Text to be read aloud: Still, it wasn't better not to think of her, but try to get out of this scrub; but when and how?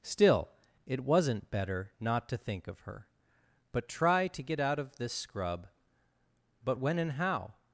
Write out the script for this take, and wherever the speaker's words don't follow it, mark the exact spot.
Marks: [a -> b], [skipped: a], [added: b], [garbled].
Still, it wasn't better not to think of her, but try to get out of this scrub; but when and how?